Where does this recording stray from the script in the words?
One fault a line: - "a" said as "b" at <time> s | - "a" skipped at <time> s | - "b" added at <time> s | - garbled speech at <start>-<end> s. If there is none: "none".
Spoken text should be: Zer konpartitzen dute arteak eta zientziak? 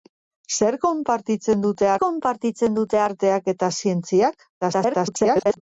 - "konpartitzen dute" added at 2.0 s
- garbled speech at 4.6-5.6 s